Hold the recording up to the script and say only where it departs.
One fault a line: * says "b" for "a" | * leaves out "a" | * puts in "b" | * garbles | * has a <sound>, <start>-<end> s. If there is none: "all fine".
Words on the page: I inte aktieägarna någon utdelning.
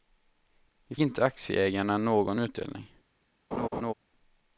* has a laugh, 3.5-3.9 s